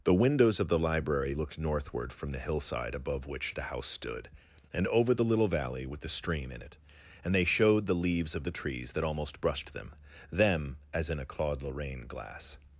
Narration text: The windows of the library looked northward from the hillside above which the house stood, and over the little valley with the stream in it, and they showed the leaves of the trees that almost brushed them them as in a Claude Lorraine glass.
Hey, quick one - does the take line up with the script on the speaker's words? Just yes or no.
yes